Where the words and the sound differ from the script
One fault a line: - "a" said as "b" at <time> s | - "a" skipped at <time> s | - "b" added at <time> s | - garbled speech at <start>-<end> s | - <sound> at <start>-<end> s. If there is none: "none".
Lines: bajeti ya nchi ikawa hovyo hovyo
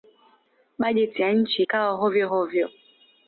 none